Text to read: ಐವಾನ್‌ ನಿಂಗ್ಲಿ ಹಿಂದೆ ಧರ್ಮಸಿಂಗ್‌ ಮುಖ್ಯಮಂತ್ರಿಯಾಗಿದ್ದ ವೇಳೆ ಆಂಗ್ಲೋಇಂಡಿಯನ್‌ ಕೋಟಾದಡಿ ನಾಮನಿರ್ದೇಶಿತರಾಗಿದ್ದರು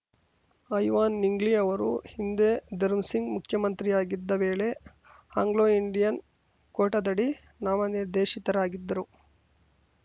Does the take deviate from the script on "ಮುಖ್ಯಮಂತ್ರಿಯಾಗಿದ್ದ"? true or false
false